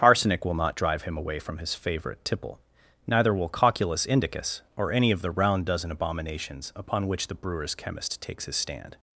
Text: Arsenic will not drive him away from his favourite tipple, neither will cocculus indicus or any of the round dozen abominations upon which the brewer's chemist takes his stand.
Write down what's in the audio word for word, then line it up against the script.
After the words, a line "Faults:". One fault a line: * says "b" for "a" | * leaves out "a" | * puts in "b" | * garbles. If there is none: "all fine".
Arsenic will not drive him away from his favourite tipple, neither will cocculus indicus or any of the round dozen abominations upon which the brewer's chemist takes his stand.
Faults:
all fine